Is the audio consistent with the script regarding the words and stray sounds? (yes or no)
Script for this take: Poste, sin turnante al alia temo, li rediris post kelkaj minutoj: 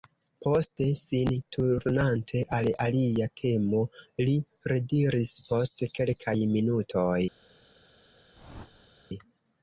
no